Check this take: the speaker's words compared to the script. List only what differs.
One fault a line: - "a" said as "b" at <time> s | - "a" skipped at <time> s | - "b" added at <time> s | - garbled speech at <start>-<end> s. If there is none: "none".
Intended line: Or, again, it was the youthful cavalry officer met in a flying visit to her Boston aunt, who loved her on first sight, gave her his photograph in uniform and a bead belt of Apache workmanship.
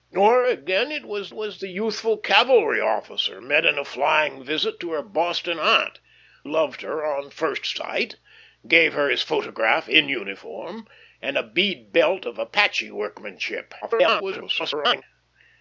- "was" added at 1.3 s
- "who" skipped at 6.0 s
- garbled speech at 13.8-15.0 s